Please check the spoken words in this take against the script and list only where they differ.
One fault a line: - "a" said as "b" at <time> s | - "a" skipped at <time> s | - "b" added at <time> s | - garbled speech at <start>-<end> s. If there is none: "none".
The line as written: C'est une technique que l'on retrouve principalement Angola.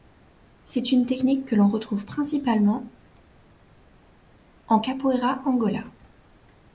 - "en Capoeira" added at 4.7 s